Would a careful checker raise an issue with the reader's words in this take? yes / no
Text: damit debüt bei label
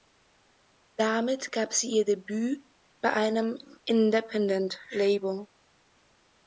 yes